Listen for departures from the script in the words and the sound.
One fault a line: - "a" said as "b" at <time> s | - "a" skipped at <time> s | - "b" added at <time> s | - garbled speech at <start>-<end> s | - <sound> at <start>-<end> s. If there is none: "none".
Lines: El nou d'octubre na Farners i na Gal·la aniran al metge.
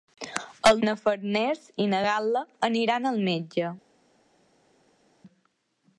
- "nou d'octubre" skipped at 0.8 s